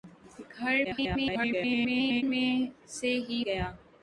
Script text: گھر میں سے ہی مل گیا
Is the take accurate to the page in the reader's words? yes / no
no